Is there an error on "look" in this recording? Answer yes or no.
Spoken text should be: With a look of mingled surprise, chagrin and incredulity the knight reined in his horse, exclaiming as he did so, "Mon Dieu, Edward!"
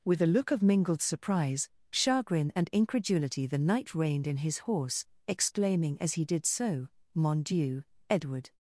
no